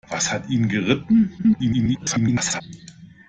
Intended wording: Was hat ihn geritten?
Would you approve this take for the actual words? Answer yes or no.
no